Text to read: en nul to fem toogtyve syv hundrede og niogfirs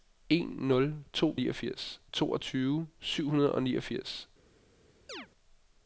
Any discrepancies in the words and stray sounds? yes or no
yes